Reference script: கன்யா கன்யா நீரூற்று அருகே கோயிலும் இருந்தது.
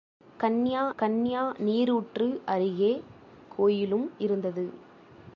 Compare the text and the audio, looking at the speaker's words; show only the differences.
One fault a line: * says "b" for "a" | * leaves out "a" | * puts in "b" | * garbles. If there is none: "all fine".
all fine